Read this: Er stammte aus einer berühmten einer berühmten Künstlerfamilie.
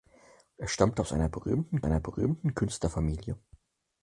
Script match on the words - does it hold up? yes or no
yes